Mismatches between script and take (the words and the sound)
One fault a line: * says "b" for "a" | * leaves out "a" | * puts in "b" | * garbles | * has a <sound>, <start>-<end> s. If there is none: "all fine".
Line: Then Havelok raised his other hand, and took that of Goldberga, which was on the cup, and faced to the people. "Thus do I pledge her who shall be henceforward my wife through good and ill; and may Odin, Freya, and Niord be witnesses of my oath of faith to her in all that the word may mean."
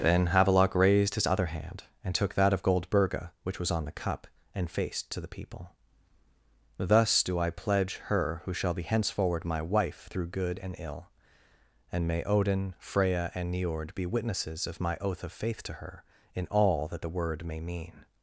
all fine